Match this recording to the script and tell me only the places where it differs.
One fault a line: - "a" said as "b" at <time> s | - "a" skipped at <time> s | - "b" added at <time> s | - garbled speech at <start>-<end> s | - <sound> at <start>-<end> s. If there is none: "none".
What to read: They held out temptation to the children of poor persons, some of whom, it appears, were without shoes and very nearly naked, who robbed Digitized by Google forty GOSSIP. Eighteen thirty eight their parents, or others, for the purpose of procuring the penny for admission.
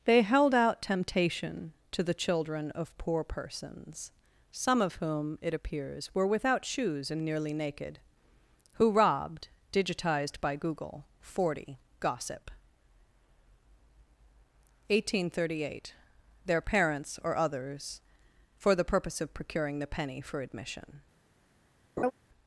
- "very" skipped at 7.2 s
- laugh at 22.0-22.1 s